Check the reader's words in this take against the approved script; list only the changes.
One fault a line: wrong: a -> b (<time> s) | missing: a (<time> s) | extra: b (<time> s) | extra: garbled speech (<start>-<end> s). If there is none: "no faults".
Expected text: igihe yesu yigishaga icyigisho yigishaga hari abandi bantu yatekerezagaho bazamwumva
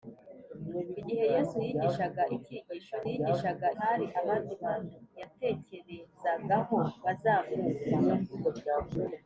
no faults